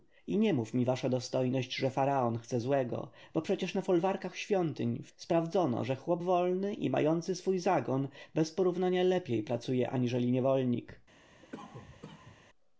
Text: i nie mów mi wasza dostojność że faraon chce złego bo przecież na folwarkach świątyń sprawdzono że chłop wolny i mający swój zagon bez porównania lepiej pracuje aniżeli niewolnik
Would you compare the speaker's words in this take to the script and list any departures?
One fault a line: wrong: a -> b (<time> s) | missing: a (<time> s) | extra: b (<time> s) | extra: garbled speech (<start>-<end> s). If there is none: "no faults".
no faults